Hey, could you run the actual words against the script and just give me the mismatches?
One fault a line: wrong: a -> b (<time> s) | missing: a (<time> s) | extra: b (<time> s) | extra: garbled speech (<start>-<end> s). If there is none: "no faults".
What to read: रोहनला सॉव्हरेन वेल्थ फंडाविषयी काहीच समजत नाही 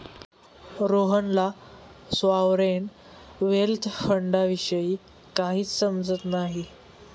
no faults